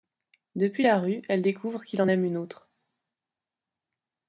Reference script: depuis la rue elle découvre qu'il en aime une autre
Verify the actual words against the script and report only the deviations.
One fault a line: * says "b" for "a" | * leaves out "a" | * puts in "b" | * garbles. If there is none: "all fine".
all fine